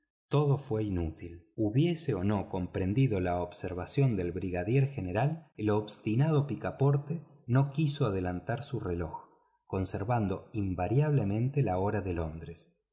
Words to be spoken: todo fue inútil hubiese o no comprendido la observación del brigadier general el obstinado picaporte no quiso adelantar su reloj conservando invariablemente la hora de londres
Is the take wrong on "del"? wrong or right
right